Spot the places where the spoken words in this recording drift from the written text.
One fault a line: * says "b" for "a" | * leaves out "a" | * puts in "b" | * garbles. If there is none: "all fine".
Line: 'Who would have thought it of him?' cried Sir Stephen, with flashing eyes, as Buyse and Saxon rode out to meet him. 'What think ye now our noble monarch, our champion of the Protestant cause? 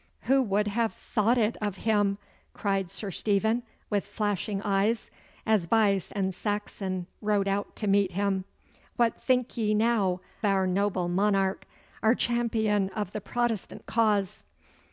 all fine